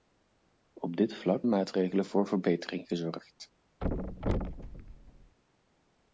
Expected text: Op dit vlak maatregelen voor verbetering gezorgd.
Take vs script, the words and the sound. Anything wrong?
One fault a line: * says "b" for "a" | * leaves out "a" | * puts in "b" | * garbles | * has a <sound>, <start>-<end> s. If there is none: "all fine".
* has a thud, 3.8-5.4 s